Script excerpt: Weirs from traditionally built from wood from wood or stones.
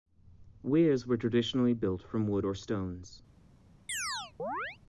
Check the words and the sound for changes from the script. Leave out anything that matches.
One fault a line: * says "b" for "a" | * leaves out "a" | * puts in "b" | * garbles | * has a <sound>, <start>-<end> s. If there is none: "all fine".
* says "were" for "from"
* leaves out "from wood"
* has a chirp, 3.9-4.8 s